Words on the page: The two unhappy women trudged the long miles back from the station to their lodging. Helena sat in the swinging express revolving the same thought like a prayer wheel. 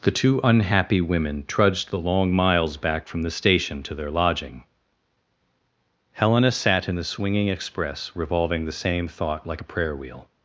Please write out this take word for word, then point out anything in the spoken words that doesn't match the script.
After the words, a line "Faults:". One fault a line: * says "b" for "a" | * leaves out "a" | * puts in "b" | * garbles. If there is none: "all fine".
The two unhappy women trudged the long miles back from the station to their lodging. Helena sat in the swinging express revolving the same thought like a prayer wheel.
Faults:
all fine